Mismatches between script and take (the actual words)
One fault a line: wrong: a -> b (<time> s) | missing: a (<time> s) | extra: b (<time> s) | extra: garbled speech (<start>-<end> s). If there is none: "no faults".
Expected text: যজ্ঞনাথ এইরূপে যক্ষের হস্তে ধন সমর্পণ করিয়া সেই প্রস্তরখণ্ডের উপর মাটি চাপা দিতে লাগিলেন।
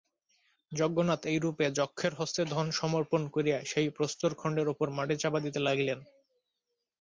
no faults